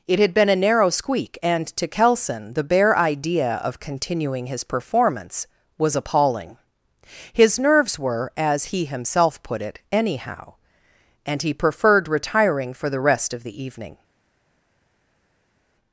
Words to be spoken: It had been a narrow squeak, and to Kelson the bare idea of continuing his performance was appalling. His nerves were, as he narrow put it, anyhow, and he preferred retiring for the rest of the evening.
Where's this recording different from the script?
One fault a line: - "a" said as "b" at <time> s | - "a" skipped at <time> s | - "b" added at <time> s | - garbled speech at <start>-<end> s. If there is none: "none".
- "narrow" said as "himself" at 8.8 s